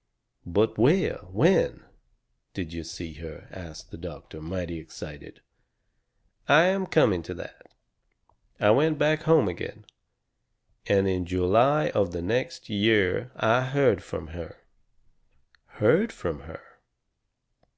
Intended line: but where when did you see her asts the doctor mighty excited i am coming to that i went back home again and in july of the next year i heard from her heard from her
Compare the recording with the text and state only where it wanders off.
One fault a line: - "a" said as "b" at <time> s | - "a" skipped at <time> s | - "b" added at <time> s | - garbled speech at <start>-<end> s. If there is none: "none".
none